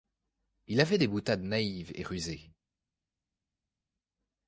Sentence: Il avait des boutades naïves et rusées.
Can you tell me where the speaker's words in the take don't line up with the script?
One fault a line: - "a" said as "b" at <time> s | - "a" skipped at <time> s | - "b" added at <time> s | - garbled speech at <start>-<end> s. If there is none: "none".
none